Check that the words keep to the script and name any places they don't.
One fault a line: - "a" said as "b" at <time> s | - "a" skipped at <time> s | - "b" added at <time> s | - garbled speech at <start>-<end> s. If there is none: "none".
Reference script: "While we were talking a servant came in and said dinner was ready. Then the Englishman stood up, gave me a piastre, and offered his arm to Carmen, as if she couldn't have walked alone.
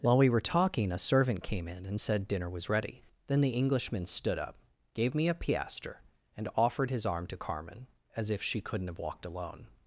none